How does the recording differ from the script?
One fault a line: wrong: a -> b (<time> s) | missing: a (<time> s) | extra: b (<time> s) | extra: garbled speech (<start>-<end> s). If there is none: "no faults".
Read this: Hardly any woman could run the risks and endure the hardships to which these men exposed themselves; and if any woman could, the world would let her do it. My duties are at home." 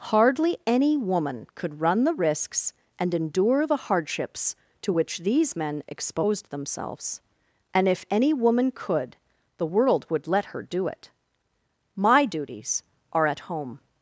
no faults